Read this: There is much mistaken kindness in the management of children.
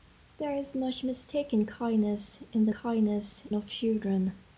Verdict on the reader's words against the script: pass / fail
fail